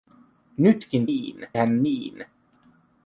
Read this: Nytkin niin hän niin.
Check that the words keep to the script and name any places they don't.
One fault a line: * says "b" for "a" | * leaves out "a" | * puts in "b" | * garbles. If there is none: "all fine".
all fine